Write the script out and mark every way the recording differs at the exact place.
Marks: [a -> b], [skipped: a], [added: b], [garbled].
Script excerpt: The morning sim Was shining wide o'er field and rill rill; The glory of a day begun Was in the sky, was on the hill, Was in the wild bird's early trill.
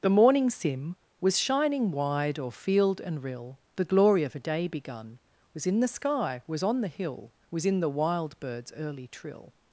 The morning sim Was shining wide o'er field and rill [skipped: rill;] The glory of a day begun Was in the sky, was on the hill, Was in the wild bird's early trill.